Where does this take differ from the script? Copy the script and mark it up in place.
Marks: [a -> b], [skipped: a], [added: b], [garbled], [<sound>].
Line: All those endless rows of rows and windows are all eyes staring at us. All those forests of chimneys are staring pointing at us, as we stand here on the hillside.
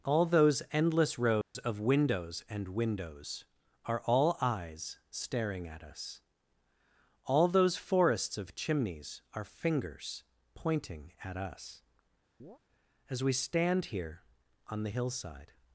All those endless rows [dropout] of [rows -> windows] and windows are all eyes staring at us. All those forests of chimneys are [staring -> fingers] pointing at us, [chirp] as we stand here on the hillside.